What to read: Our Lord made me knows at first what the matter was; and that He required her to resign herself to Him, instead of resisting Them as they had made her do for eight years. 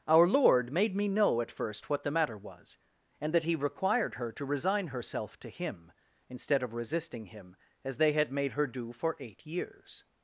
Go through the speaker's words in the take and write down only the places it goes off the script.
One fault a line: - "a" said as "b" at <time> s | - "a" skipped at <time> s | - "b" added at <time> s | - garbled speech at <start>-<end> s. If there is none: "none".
- "knows" said as "know" at 1.1 s
- "Them" said as "Him" at 7.3 s